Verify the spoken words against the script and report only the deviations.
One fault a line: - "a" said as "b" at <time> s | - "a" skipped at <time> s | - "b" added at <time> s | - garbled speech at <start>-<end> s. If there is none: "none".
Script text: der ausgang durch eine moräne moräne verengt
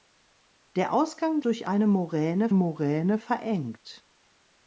none